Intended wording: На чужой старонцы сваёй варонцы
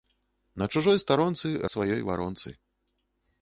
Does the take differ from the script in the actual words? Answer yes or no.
no